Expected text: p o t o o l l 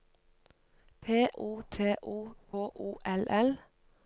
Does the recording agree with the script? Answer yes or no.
yes